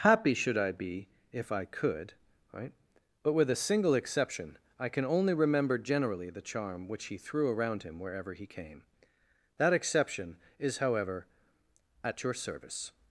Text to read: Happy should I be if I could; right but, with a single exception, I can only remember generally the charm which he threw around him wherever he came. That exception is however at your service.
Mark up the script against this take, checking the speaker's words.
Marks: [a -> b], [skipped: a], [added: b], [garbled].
Happy should I be if I could; right but, with a single exception, I can only remember generally the charm which he threw around him wherever he came. That exception is however at your service.